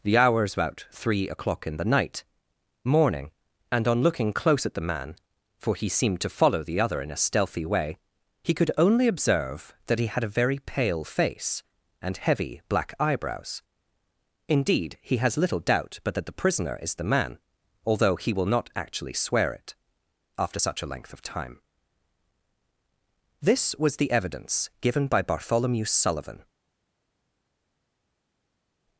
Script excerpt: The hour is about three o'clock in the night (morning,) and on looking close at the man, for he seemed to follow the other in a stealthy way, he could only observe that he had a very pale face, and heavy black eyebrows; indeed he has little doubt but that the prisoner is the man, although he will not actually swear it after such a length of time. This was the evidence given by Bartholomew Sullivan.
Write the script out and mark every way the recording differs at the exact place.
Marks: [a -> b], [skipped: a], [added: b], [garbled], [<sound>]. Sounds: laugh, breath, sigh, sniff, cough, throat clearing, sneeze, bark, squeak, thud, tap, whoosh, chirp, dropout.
The hour is about three o'clock in the night (morning,) and on looking close at the man, for he seemed to follow the other in a stealthy way, he could only observe that he had a very pale face, and heavy black eyebrows; indeed he has little doubt but that the prisoner is the man, although he will not actually swear it after such a length of time. This was the evidence given by Bartholomew Sullivan.